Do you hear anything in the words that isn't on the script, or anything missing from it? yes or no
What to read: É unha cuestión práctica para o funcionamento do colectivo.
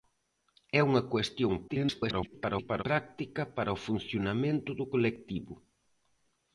yes